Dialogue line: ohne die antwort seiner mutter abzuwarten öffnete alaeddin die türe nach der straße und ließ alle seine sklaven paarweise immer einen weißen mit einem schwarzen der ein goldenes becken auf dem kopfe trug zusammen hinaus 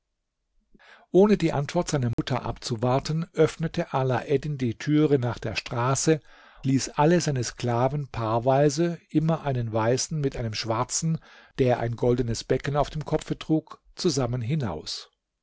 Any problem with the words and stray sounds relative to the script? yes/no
yes